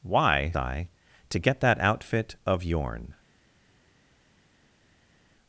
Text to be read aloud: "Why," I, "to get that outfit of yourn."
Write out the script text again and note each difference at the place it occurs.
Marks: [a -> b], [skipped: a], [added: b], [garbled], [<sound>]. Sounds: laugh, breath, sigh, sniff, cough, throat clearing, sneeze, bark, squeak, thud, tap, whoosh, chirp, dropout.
"Why," I, "to get that outfit of yourn."